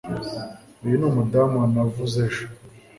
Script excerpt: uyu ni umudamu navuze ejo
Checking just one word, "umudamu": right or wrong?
right